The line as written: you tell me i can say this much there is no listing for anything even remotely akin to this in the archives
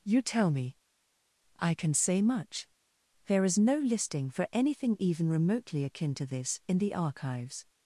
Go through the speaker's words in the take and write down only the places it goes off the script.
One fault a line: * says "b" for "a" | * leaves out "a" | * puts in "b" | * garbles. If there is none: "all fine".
* leaves out "this"